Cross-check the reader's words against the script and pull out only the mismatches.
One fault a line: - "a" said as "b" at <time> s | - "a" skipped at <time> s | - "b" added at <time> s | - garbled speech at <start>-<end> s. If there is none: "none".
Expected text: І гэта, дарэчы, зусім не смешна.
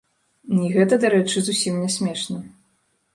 none